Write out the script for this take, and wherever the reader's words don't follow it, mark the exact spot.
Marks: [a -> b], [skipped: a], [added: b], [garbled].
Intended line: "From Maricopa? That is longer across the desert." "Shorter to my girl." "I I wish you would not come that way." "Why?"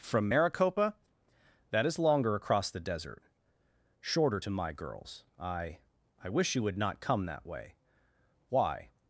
"From Maricopa? That is longer across the desert." "Shorter to my [girl." -> girls] "I I wish you would not come that way." "Why?"